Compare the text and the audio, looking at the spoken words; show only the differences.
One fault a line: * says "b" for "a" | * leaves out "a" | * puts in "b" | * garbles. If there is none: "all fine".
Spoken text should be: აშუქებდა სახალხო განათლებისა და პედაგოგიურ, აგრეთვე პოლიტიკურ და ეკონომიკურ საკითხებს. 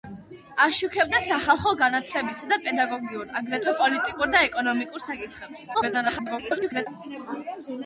* garbles